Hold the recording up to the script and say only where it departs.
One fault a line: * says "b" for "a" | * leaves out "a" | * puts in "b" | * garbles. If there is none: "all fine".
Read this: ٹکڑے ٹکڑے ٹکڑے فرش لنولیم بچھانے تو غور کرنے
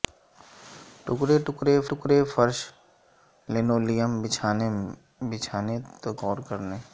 all fine